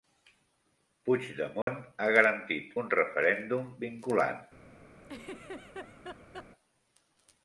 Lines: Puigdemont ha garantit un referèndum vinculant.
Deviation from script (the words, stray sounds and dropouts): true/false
true